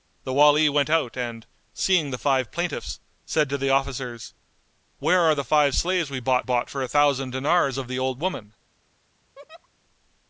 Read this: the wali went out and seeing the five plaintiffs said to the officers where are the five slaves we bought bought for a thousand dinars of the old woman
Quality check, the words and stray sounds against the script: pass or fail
fail